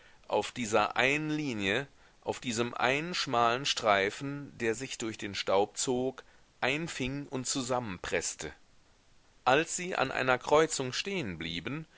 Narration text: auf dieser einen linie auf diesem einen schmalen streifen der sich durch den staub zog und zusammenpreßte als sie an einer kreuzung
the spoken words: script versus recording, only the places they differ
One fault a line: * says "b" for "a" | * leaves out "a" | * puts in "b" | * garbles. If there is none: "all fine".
* puts in "einfing"